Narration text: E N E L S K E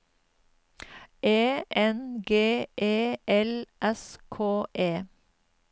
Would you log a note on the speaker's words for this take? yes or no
yes